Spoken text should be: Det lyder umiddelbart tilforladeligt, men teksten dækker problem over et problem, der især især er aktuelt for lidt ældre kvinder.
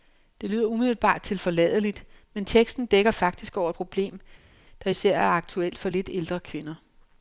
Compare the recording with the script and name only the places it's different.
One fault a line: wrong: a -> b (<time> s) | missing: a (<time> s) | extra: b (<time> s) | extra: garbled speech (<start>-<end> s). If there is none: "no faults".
wrong: problem -> faktisk (3.1 s)
missing: især (5.2 s)